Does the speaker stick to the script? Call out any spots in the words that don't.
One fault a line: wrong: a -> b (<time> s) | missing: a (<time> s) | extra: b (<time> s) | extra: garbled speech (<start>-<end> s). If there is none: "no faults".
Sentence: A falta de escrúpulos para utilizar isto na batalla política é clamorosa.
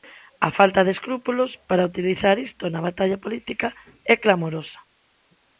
no faults